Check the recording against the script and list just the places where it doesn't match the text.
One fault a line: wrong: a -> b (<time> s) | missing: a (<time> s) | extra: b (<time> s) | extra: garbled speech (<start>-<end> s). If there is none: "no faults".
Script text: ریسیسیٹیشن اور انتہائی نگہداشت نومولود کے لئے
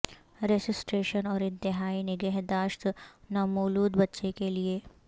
extra: بچے (4.0 s)